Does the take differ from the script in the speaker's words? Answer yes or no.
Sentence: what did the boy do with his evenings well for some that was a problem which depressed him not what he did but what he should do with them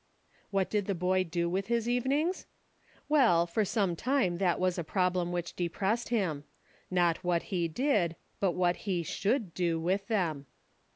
yes